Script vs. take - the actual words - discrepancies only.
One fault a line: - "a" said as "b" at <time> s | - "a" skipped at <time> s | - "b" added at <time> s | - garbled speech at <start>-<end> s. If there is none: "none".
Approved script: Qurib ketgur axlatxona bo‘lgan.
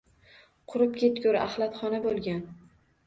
none